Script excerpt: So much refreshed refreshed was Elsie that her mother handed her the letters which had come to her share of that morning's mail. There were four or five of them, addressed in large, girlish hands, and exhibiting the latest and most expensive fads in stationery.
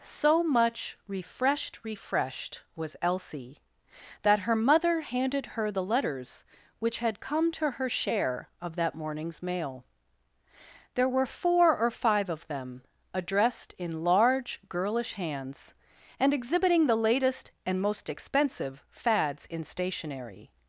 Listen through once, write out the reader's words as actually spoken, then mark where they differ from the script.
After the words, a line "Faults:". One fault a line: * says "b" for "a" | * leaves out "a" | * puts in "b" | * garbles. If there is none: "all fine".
So much refreshed refreshed was Elsie that her mother handed her the letters which had come to her share of that morning's mail. There were four or five of them, addressed in large, girlish hands, and exhibiting the latest and most expensive fads in stationery.
Faults:
all fine